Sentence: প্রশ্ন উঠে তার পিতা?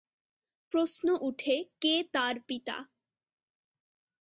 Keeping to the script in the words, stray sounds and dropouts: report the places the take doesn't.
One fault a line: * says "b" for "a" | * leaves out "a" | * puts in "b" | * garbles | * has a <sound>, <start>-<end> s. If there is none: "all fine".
* puts in "কে"